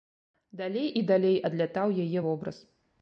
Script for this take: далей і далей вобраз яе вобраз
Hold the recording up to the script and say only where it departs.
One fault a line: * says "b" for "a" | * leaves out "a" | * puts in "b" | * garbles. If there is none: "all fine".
* says "адлятаў" for "вобраз"